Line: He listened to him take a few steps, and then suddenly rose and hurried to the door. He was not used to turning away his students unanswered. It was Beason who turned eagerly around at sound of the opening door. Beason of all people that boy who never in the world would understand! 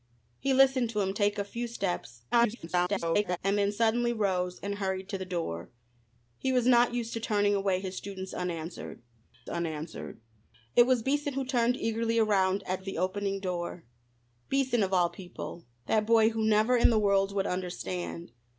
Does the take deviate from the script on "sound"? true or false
true